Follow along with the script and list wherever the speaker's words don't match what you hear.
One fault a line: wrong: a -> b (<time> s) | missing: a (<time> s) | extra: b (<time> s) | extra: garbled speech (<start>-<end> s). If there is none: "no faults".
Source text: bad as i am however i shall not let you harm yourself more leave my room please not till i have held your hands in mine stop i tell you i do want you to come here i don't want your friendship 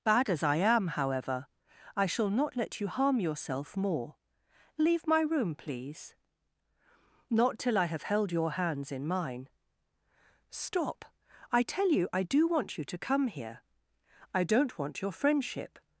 no faults